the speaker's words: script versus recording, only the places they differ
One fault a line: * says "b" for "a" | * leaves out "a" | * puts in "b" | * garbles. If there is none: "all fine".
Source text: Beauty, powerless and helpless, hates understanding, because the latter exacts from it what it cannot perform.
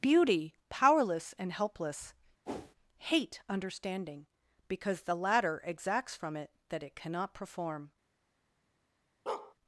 * says "hate" for "hates"
* says "that" for "what"